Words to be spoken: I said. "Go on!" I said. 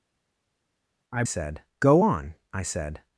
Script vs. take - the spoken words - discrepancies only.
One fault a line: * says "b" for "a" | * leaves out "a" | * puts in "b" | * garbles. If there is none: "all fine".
all fine